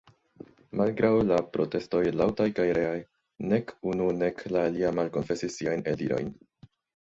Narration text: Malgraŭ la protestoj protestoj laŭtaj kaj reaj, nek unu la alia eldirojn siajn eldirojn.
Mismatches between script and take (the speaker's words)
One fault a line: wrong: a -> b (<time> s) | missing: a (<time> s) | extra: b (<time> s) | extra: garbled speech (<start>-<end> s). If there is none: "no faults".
missing: protestoj (2.0 s)
extra: nek (4.2 s)
wrong: eldirojn -> malkonfesis (5.0 s)